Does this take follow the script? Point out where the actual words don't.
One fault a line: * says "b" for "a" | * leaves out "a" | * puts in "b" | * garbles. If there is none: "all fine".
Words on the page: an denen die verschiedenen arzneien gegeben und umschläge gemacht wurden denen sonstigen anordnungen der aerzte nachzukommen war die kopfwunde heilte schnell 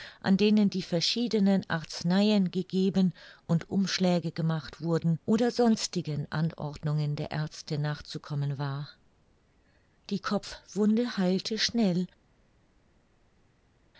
* says "oder" for "denen"